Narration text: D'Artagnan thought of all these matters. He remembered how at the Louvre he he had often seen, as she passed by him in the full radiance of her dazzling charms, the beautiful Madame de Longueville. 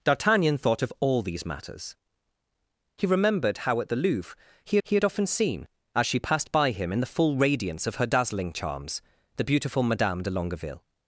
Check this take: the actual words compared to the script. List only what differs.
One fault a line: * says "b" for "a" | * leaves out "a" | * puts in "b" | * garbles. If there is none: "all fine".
all fine